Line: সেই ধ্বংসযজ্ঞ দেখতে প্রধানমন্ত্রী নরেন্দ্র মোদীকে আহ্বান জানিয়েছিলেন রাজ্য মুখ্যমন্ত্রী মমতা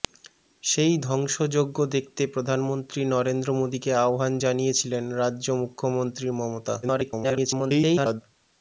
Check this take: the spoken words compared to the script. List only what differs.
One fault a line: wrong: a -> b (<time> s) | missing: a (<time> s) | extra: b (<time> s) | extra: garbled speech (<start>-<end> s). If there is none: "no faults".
extra: garbled speech (6.8-8.2 s)